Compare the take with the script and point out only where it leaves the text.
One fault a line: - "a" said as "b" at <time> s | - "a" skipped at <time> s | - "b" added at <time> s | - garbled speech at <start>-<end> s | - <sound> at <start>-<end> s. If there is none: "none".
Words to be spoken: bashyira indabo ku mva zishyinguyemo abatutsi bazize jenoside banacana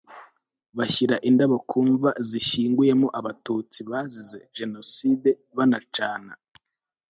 none